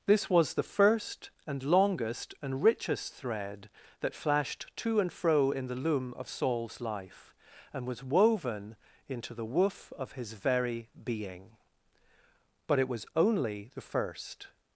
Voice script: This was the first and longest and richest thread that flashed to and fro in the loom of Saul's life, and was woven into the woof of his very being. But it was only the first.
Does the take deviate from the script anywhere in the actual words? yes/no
no